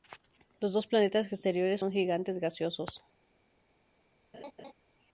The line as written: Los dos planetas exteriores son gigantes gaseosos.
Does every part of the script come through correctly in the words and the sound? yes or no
no